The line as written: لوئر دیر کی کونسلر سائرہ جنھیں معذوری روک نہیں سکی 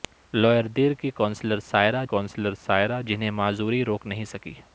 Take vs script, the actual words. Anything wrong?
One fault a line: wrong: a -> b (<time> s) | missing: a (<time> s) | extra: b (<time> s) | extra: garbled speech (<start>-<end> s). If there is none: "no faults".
extra: کونسلر سائرہ (2.0 s)